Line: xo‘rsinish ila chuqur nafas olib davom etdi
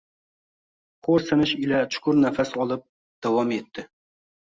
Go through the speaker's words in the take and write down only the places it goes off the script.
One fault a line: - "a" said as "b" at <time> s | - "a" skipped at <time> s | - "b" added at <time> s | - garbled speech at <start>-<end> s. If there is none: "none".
none